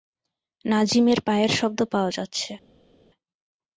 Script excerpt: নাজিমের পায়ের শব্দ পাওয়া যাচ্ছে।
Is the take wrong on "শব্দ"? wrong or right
right